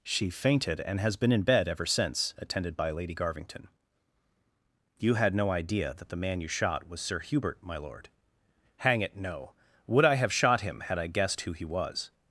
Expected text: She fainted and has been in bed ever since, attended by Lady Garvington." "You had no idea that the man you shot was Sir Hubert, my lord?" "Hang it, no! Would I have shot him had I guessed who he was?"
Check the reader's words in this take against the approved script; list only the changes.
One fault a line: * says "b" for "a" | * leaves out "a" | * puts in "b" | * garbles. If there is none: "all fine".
all fine